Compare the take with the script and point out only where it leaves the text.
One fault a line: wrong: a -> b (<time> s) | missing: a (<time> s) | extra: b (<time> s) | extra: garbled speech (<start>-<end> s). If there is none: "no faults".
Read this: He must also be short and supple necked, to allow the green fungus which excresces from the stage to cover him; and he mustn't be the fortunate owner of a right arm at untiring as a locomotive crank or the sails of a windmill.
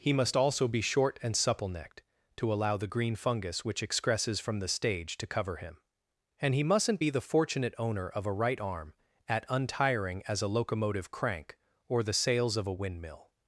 no faults